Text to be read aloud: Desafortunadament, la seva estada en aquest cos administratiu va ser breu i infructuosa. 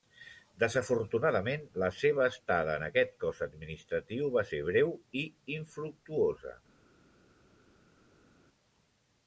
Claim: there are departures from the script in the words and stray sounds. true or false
false